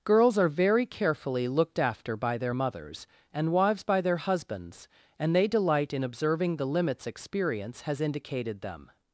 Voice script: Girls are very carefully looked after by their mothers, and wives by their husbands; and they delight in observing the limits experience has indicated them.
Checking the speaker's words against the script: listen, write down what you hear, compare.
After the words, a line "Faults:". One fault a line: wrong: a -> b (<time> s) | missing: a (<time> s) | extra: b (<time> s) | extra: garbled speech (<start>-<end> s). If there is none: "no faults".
Girls are very carefully looked after by their mothers, and wives by their husbands; and they delight in observing the limits experience has indicated them.
Faults:
no faults